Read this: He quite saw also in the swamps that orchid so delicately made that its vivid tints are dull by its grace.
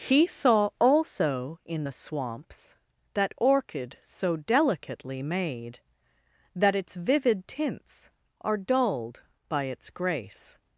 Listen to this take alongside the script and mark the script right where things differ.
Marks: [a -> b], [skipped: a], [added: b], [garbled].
He [skipped: quite] saw also in the swamps that orchid so delicately made that its vivid tints are [dull -> dulled] by its grace.